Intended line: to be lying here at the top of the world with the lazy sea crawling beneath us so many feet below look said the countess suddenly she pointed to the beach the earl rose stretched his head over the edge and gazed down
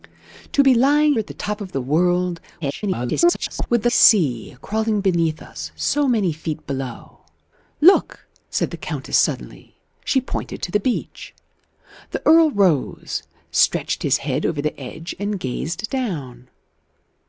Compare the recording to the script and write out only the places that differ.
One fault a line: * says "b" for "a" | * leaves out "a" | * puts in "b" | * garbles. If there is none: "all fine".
* leaves out "here"
* garbles
* leaves out "lazy"